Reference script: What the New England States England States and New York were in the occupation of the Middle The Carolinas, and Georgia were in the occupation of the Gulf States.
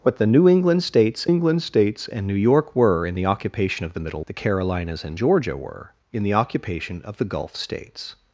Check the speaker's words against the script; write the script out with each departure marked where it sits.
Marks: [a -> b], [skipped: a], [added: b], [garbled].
What the New England States England States and New York were in the occupation of the Middle The Carolinas, and Georgia were in the occupation of the Gulf States.